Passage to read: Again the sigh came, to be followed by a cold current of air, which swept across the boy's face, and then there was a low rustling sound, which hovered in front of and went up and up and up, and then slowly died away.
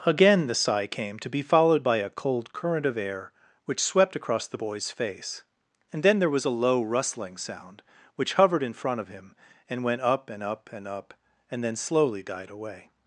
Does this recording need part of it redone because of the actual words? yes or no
yes